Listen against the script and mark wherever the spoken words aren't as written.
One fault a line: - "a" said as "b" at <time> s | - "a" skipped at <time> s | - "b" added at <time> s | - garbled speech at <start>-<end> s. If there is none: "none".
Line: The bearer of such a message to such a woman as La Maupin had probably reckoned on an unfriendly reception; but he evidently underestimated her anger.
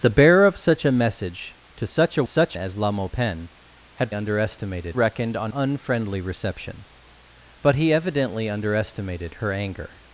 - "woman" said as "such" at 2.2 s
- "probably" said as "underestimated" at 4.1 s
- "an" skipped at 5.5 s